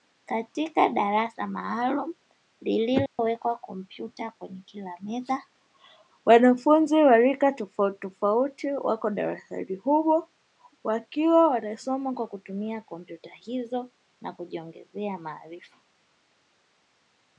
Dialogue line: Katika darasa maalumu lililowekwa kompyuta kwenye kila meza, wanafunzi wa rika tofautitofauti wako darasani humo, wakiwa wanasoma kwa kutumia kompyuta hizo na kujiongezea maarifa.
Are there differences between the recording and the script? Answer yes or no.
no